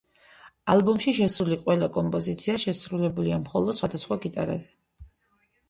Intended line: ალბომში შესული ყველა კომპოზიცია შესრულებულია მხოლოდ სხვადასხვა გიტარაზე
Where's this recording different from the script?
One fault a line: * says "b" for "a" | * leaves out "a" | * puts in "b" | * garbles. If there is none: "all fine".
all fine